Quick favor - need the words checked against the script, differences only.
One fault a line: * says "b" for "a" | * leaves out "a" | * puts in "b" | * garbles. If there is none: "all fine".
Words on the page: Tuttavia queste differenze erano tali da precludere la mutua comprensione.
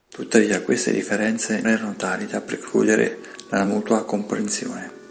all fine